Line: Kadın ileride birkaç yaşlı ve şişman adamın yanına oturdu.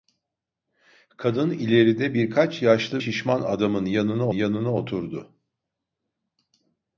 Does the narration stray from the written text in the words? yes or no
yes